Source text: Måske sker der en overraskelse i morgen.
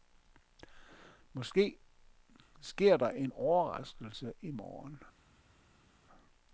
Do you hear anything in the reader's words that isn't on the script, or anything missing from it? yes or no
no